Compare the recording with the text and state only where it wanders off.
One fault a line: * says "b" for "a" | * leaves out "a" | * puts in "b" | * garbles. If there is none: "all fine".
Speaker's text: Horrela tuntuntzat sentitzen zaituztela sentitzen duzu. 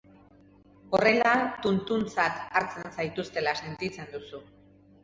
* says "hartzen" for "sentitzen"